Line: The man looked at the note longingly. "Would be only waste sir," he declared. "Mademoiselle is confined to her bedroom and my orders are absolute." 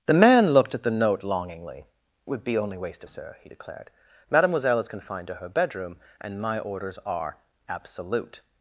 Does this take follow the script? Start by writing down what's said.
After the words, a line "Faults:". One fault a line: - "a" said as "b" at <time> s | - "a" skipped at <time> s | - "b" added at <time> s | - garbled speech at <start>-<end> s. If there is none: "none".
The man looked at the note longingly. "Would be only waste sir," he declared. "Mademoiselle is confined to her bedroom and my orders are absolute."
Faults:
none